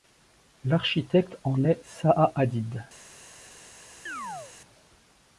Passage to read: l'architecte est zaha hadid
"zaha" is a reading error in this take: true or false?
false